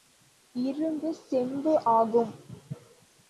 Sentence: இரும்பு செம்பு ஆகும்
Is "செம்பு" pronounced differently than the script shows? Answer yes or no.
no